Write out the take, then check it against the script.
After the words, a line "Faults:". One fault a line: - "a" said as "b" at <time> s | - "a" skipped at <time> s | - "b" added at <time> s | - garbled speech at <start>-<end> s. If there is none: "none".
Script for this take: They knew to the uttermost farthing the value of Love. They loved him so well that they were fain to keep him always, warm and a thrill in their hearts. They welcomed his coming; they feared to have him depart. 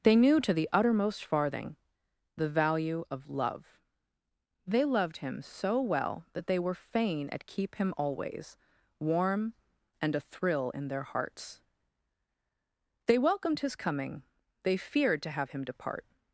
They knew to the uttermost farthing the value of Love. They loved him so well that they were fain at keep him always, warm and a thrill in their hearts. They welcomed his coming; they feared to have him depart.
Faults:
- "to" said as "at" at 7.3 s